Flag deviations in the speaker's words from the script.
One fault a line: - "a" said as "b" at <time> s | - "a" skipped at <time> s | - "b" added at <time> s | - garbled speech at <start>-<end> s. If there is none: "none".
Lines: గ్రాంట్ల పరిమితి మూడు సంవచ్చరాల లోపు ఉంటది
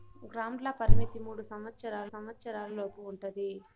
- "సంవచ్చరాల" added at 2.1 s